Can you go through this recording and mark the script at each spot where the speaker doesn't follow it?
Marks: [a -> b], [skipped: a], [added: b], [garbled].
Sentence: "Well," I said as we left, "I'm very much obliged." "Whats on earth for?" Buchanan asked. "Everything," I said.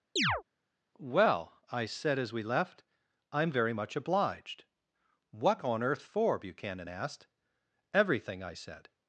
"Well," I said as we left, "I'm very much obliged." ["Whats -> What] on earth for?" Buchanan asked. "Everything," I said.